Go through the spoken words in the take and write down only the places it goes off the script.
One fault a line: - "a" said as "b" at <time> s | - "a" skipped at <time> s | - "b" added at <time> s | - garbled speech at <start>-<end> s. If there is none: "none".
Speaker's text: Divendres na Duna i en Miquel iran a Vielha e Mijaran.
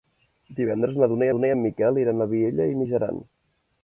- "Duna" added at 1.4 s